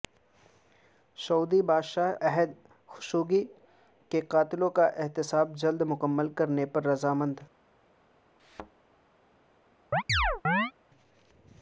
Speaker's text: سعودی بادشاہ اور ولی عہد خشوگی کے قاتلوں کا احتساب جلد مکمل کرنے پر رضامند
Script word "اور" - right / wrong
wrong